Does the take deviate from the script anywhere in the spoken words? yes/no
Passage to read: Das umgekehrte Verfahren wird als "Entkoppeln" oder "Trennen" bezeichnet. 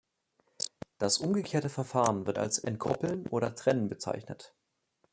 no